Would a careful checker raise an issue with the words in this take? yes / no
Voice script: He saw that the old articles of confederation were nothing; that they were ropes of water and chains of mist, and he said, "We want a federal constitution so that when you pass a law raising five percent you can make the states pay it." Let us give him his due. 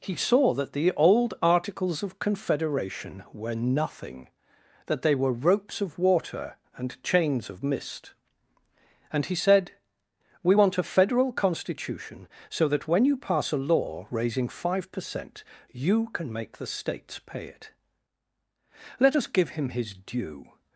no